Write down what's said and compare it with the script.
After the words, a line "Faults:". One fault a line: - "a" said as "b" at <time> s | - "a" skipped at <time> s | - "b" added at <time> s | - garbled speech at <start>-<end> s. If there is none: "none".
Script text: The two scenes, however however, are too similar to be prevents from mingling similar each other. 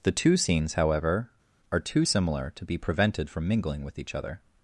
The two scenes, however, are too similar to be prevented from mingling with each other.
Faults:
- "however" skipped at 1.3 s
- "prevents" said as "prevented" at 2.8 s
- "similar" said as "with" at 3.8 s